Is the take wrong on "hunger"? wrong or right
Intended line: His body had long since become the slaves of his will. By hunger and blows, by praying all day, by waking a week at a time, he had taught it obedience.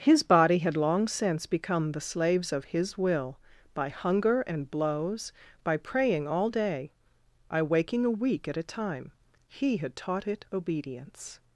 right